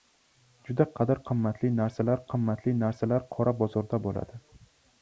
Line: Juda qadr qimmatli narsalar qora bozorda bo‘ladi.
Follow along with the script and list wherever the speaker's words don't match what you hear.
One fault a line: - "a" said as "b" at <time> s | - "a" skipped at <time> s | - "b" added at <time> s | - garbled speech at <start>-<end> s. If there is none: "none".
- "qimmatli narsalar" added at 2.3 s